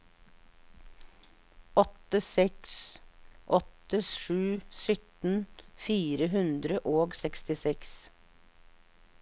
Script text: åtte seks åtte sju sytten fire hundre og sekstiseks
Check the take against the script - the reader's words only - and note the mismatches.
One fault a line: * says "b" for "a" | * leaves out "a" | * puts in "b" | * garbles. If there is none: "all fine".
all fine